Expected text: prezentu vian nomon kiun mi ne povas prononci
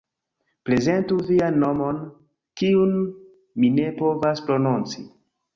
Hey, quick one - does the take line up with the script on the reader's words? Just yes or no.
yes